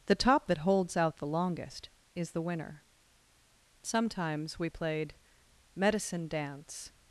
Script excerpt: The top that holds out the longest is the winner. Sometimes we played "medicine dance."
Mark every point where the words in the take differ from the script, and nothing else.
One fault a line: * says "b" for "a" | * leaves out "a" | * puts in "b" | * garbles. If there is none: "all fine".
all fine